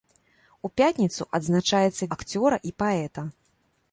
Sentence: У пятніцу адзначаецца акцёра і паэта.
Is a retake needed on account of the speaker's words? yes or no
no